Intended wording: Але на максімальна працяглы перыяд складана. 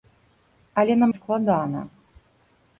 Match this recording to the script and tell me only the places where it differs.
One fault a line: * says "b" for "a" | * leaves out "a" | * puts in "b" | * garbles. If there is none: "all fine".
* leaves out "максімальна працяглы перыяд"